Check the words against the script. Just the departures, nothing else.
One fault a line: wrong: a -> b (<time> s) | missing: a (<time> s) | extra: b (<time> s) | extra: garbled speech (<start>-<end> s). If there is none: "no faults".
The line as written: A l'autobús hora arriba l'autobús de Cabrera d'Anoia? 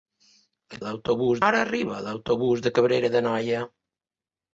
no faults